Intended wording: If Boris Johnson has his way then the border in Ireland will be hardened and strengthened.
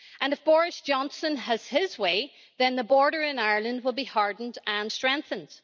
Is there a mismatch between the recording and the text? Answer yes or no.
no